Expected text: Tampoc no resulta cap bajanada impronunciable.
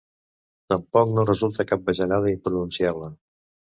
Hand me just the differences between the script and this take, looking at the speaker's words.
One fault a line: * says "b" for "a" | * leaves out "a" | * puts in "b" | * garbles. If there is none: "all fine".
all fine